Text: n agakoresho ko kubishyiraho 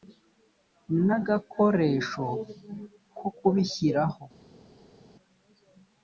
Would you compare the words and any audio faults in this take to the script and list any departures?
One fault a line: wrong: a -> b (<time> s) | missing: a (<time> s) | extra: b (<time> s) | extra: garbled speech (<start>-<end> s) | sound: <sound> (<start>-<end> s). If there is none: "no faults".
no faults